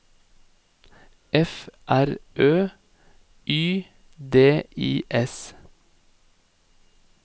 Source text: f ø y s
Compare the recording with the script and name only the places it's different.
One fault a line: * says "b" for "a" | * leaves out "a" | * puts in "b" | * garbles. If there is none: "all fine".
* puts in "r"
* puts in "d i"